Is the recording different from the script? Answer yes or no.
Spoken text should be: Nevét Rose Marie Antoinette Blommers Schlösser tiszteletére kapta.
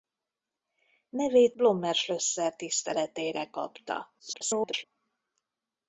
yes